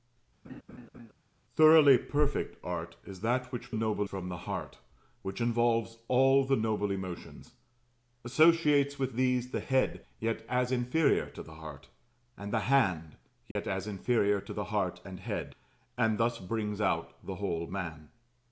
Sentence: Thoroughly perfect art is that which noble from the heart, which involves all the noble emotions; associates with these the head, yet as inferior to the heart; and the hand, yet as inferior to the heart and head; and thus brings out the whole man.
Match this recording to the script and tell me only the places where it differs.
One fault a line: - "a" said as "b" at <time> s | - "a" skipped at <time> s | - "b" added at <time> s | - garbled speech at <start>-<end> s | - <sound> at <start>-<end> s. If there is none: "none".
- laugh at 0.4-1.1 s
- dropout at 13.5-13.6 s